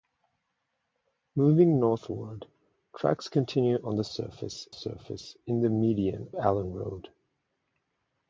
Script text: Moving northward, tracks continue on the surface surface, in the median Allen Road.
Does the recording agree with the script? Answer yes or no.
yes